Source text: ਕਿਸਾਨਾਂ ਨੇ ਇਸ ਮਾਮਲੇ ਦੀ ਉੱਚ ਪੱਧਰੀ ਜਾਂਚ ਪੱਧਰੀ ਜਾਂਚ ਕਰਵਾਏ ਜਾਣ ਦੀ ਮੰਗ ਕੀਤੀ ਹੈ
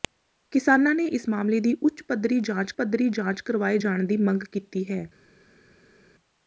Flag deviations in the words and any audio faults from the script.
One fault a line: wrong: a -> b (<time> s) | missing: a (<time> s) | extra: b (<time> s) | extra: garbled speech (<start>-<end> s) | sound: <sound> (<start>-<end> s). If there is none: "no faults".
no faults